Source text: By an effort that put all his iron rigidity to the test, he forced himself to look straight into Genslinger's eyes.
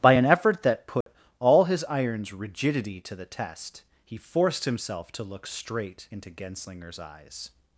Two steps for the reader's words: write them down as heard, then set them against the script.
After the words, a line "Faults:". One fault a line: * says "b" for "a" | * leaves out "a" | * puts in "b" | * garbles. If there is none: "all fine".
By an effort that put all his irons rigidity to the test, he forced himself to look straight into Genslinger's eyes.
Faults:
* says "irons" for "iron"